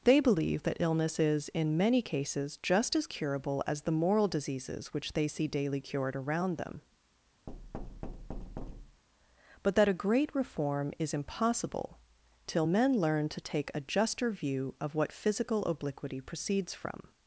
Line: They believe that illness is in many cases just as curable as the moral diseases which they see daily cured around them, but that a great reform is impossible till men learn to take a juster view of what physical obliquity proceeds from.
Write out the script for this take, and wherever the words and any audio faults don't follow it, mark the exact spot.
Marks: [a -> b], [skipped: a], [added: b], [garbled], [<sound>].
They believe that illness is in many cases just as curable as the moral diseases which they see daily cured around them, [thud] but that a great reform is impossible till men learn to take a juster view of what physical obliquity proceeds from.